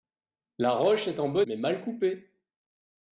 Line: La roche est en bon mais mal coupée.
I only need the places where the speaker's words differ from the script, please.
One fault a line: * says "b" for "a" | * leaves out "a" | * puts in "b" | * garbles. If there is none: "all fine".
all fine